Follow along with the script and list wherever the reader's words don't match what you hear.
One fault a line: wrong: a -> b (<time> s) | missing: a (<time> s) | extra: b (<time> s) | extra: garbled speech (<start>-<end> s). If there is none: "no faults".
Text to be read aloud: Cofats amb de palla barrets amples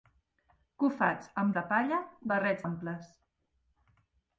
no faults